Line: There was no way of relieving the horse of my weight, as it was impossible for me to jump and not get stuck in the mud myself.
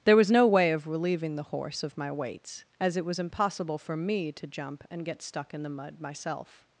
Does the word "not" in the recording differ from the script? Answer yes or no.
yes